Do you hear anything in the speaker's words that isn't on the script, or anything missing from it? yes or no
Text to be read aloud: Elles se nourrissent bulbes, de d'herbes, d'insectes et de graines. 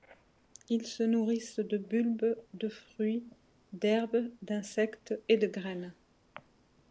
yes